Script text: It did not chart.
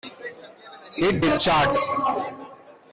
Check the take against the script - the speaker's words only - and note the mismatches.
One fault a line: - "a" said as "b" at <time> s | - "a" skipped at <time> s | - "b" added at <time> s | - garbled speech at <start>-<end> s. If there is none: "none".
- "not" skipped at 1.4 s